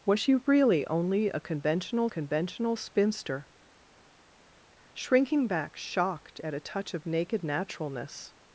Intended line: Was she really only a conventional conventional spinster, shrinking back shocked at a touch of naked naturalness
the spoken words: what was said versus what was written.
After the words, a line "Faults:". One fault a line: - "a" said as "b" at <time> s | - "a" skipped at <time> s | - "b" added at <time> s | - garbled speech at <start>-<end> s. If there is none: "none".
Was she really only a conventional conventional spinster, shrinking back shocked at a touch of naked naturalness
Faults:
none